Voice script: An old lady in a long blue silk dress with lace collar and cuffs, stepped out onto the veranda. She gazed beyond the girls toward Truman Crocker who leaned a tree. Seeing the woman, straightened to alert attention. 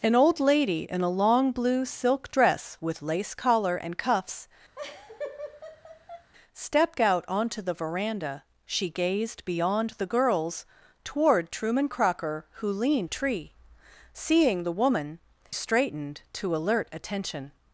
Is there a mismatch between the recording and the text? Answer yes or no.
no